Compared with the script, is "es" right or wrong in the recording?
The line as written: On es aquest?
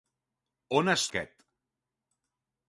right